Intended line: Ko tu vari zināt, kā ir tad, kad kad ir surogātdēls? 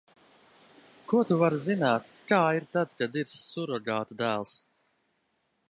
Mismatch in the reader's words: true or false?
true